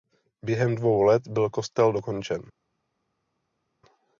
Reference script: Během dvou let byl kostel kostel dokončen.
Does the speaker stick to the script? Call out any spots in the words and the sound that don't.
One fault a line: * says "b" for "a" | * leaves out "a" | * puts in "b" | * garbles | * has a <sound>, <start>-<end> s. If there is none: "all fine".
* leaves out "kostel"